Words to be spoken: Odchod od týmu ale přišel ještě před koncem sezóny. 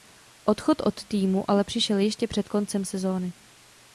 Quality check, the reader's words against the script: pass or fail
pass